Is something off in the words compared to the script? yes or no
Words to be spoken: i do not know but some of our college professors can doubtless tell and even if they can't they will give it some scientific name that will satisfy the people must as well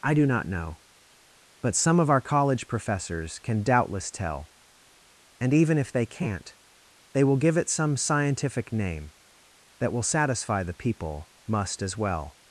no